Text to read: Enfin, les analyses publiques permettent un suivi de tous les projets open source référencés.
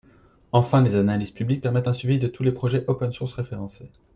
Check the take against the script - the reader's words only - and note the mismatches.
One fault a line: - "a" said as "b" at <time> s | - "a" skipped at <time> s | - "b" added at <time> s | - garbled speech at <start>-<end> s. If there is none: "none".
none